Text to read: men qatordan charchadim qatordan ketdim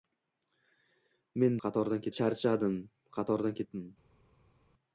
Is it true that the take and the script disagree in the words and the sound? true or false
false